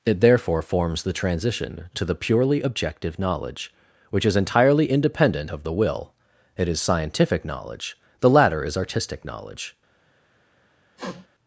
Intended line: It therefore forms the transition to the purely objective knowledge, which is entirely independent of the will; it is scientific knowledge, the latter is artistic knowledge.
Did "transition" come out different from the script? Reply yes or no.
no